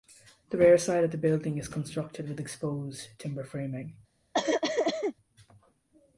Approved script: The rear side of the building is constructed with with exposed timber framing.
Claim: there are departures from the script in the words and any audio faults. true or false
true